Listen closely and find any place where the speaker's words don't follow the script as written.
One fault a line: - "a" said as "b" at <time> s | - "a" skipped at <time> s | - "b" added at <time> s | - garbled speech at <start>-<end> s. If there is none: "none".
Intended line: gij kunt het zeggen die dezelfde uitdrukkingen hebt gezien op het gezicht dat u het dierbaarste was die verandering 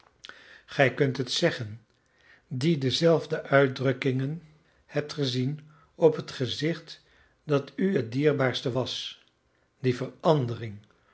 none